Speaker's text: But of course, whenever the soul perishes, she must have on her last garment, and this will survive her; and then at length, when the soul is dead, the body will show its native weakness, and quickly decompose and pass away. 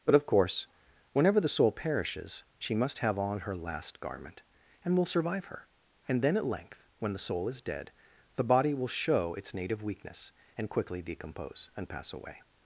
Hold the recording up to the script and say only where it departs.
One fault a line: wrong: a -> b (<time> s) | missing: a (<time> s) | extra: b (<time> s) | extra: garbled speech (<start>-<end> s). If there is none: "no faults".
missing: this (5.0 s)